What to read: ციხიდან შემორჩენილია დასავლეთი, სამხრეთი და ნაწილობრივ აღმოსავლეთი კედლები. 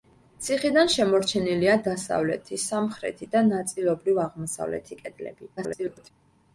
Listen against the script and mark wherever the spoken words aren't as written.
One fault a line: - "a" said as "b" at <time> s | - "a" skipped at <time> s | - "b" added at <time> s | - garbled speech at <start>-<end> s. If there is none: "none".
- garbled speech at 5.6-6.1 s